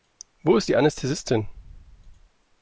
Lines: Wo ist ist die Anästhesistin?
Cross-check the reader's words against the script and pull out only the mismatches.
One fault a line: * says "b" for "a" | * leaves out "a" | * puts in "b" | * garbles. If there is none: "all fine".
* leaves out "ist"